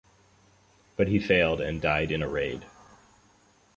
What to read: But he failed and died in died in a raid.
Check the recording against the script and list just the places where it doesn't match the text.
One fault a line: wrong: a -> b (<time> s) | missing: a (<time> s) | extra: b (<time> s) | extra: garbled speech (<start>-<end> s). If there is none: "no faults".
missing: died in (2.2 s)